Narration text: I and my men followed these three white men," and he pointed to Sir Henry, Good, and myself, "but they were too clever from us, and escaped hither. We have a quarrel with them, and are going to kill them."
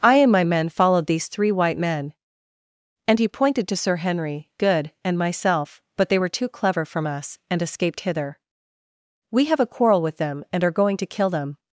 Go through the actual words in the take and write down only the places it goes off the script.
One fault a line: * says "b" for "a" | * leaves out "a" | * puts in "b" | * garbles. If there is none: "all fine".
all fine